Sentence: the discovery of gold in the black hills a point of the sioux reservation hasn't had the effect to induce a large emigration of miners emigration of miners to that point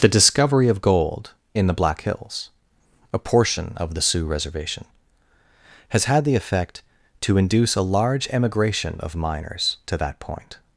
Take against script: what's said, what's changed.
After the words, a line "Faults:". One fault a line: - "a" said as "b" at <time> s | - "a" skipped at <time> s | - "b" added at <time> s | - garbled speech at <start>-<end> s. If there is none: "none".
the discovery of gold in the black hills a portion of the sioux reservation has had the effect to induce a large emigration of miners to that point
Faults:
- "point" said as "portion" at 3.2 s
- "hasn't" said as "has" at 5.9 s
- "emigration of miners" skipped at 9.8 s